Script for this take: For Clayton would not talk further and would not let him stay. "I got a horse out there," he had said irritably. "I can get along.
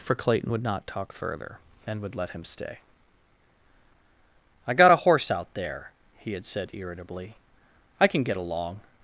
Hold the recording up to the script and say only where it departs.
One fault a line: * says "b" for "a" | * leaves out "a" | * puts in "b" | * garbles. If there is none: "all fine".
* leaves out "not"